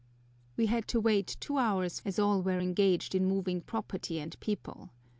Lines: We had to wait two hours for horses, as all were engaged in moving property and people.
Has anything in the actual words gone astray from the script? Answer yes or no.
yes